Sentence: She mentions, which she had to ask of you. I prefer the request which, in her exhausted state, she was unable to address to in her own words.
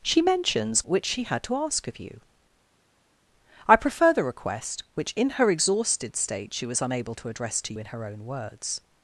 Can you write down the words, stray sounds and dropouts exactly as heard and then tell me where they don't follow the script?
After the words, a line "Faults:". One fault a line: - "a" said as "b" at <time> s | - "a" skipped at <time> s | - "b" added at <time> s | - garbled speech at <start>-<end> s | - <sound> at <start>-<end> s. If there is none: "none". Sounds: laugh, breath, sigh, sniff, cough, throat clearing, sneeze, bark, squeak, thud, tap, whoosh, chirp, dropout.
She mentions, which she had to ask of you. I prefer the request which, in her exhausted state, she was unable to address to in her own words.
Faults:
none